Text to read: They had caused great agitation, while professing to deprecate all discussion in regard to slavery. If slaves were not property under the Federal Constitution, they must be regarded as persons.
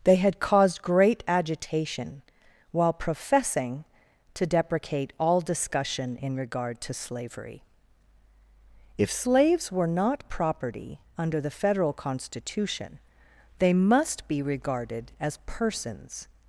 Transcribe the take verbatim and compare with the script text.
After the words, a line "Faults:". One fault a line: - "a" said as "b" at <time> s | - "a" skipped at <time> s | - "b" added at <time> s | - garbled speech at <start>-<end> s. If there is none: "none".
They had caused great agitation, while professing to deprecate all discussion in regard to slavery. If slaves were not property under the Federal Constitution, they must be regarded as persons.
Faults:
none